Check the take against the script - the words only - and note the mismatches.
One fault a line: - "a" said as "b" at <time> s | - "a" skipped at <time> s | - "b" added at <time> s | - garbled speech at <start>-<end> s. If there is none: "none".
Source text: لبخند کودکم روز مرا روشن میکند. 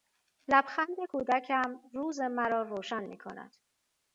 none